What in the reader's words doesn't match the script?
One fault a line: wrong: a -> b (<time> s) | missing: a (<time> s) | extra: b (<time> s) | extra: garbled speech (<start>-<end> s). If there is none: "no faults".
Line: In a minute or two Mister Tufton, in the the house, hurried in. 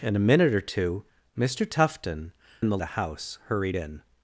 no faults